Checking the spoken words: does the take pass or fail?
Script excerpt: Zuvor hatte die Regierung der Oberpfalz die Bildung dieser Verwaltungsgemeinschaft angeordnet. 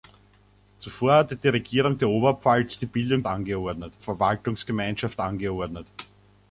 fail